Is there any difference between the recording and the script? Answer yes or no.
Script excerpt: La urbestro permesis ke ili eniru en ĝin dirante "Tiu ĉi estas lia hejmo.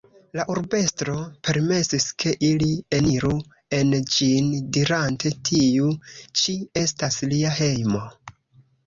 no